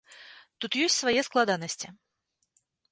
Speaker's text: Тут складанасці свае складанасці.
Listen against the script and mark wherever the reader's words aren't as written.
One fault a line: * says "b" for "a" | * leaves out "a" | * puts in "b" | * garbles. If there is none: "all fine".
* says "ёсць" for "складанасці"